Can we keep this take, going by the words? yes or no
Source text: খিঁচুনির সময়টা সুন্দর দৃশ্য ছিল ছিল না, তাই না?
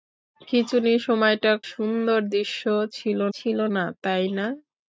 yes